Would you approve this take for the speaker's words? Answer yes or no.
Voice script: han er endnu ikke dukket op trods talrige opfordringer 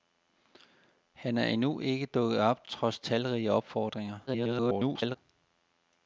no